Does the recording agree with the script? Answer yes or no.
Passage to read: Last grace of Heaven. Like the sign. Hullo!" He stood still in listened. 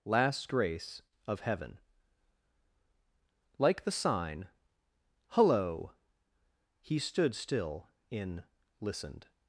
yes